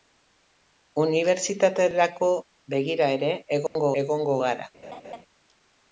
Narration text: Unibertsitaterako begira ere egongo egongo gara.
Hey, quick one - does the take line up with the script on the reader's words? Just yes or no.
yes